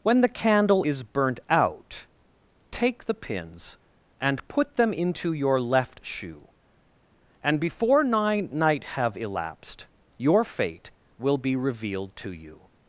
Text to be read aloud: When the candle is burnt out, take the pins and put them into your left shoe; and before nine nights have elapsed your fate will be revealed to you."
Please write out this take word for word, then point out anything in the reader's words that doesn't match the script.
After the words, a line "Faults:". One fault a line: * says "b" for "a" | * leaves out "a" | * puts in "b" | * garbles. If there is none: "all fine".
When the candle is burnt out, take the pins and put them into your left shoe; and before nine night have elapsed your fate will be revealed to you."
Faults:
* says "night" for "nights"